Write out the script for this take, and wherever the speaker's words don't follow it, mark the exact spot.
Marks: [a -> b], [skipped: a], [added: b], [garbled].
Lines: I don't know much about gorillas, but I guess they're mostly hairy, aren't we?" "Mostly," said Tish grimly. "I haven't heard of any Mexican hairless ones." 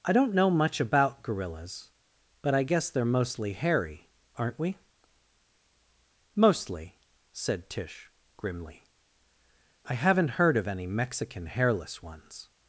I don't know much about gorillas, but I guess they're mostly hairy, aren't we?" "Mostly," said Tish grimly. "I haven't heard of any Mexican hairless ones."